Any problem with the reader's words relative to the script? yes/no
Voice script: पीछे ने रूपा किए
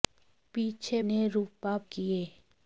no